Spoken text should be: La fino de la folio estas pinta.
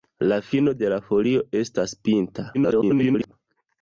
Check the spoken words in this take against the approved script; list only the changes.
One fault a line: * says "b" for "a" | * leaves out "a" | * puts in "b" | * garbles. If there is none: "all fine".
* garbles